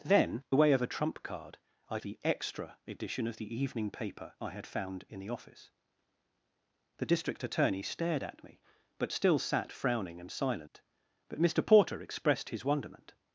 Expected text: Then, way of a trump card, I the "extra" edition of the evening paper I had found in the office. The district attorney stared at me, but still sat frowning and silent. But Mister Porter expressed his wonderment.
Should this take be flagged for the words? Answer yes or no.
no